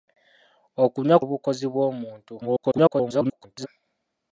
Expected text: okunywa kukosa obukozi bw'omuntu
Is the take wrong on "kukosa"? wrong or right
wrong